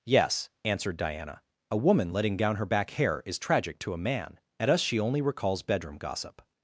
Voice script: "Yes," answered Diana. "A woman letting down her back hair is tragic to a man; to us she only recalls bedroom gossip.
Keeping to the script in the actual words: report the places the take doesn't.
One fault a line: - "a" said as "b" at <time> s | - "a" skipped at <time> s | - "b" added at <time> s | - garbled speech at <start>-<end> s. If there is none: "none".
- "to" said as "at" at 4.6 s